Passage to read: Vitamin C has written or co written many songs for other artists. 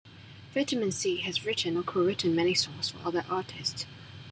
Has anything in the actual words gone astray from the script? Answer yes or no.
no